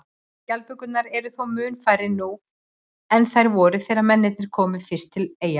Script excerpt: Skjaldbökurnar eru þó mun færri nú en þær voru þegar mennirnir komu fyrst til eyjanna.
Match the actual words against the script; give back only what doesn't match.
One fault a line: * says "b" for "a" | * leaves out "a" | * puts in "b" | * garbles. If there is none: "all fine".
all fine